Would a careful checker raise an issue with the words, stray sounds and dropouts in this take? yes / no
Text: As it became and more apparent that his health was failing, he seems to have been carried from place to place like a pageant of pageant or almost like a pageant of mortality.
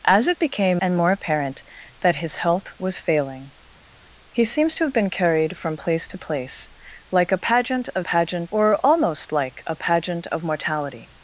no